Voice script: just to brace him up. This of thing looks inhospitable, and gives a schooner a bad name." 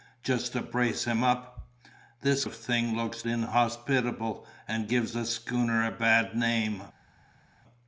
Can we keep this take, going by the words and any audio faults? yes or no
yes